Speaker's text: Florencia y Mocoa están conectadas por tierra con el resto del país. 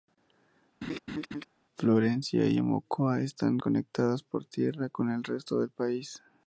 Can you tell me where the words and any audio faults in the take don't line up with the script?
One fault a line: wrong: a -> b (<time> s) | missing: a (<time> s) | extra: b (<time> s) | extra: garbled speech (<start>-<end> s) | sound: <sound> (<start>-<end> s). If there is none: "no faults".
sound: laugh (0.8-1.5 s)